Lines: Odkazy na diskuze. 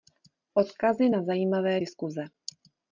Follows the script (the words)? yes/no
no